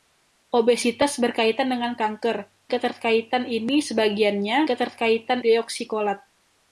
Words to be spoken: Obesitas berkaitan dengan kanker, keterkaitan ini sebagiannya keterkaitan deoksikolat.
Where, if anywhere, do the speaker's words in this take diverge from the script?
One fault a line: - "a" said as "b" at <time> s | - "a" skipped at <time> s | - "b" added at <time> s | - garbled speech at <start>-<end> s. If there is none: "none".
none